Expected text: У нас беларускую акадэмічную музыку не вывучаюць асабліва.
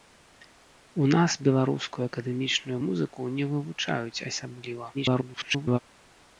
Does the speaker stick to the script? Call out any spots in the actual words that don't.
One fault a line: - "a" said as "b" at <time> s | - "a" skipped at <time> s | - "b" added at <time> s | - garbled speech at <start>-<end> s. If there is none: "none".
- garbled speech at 4.9-5.8 s